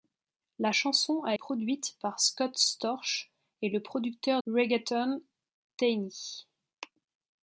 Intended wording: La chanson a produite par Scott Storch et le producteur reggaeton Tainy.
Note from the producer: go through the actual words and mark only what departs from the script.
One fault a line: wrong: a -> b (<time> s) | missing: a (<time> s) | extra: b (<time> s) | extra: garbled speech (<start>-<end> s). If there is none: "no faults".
no faults